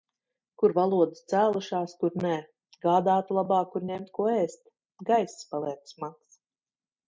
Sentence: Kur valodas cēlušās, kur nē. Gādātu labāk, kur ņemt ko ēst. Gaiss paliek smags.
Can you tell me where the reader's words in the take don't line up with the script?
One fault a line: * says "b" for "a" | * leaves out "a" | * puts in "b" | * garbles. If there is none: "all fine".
all fine